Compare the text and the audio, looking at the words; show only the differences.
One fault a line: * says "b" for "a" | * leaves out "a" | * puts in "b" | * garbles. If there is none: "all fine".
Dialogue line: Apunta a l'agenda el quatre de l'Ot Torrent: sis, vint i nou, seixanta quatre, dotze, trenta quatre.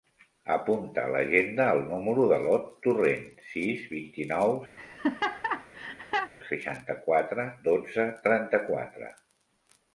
* says "número" for "quatre"